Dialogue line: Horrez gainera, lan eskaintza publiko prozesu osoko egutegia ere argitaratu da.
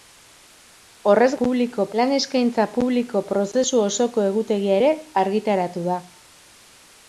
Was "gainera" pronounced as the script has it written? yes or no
no